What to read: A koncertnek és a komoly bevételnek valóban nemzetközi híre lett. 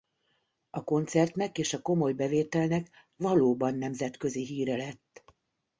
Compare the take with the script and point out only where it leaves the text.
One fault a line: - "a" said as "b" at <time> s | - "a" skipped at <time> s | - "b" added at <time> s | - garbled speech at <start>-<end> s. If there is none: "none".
none